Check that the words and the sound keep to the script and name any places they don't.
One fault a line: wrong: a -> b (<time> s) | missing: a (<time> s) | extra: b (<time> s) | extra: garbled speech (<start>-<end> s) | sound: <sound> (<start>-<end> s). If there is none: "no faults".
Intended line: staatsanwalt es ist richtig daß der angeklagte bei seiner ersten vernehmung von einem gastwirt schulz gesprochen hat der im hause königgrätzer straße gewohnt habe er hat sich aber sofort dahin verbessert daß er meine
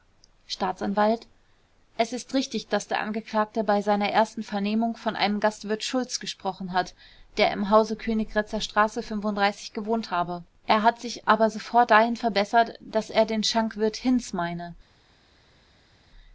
extra: den schankwirt hinz (13.3 s)